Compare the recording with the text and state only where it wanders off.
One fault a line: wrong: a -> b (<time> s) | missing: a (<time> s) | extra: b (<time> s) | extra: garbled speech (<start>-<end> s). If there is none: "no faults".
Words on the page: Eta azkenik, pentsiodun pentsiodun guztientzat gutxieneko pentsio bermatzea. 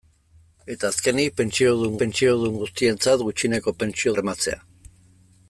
no faults